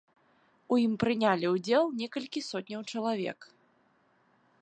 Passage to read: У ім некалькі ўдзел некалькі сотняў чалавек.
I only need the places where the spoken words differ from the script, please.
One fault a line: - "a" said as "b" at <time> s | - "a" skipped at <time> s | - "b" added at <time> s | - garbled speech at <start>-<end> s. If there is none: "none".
- "некалькі" said as "прынялі" at 1.0 s